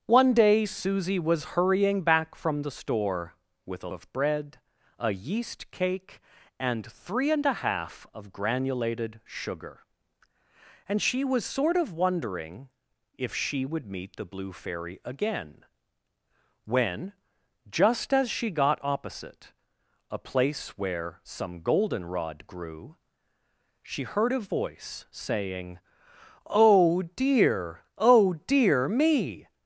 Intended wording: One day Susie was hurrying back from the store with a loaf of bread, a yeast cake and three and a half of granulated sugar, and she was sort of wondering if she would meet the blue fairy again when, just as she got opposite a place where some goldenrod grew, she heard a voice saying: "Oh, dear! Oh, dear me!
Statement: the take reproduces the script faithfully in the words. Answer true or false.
false